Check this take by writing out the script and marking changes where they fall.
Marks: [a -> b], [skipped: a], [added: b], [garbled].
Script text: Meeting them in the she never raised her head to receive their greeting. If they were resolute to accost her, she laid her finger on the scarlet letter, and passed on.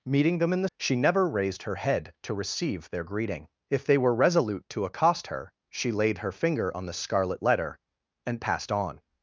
Meeting them in the she never raised her head to receive their greeting. If they were resolute to accost her, she laid her finger on the scarlet letter, and passed on.